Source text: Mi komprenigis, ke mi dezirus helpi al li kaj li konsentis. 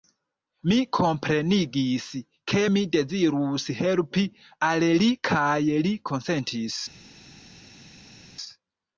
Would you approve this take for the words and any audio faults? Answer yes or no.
yes